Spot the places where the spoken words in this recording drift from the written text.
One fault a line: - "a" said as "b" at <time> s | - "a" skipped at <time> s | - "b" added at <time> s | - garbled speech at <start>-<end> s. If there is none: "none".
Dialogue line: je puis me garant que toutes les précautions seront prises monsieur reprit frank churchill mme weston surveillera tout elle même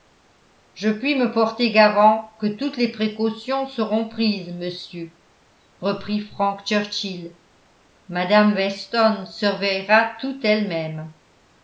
- "porter" added at 1.3 s